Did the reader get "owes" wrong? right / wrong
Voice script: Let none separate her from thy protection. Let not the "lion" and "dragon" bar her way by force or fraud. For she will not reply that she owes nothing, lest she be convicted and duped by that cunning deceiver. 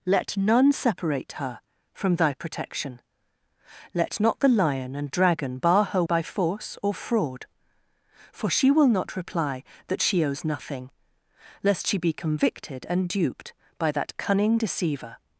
right